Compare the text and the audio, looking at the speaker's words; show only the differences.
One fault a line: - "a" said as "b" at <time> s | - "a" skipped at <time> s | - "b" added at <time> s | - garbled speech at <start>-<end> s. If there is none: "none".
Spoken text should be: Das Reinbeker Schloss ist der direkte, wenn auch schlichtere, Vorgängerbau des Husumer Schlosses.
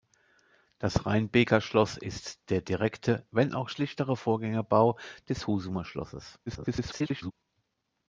- garbled speech at 6.5-7.3 s